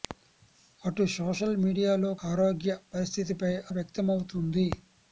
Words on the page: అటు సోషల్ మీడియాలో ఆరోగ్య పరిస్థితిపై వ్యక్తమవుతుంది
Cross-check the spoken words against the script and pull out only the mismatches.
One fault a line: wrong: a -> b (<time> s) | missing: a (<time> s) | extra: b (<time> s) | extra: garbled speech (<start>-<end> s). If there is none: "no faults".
no faults